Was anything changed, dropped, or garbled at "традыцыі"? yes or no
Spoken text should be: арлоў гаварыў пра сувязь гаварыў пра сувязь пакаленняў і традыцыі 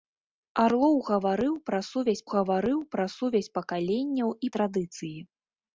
no